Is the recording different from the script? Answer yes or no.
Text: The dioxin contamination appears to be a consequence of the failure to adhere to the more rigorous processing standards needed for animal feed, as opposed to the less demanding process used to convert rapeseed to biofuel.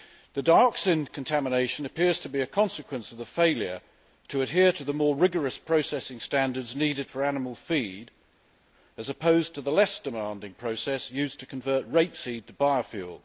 no